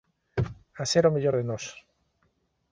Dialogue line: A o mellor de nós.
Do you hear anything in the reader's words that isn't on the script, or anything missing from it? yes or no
yes